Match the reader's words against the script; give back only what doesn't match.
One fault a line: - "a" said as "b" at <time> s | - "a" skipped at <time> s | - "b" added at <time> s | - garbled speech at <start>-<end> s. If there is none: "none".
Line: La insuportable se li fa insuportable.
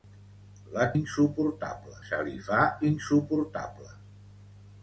none